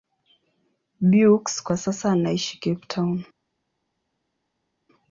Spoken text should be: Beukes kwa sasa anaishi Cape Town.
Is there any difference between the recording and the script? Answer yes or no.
no